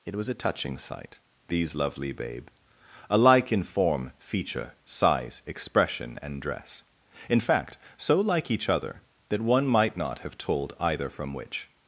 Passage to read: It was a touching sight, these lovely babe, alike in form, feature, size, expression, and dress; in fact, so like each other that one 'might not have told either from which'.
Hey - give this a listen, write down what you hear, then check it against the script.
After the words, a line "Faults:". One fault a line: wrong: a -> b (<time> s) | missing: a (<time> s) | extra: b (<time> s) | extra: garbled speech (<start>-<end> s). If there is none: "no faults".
It was a touching sight, these lovely babe, alike in form, feature, size, expression, and dress; in fact, so like each other that one 'might not have told either from which'.
Faults:
no faults